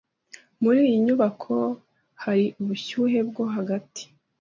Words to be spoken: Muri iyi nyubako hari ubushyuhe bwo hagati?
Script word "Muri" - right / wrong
right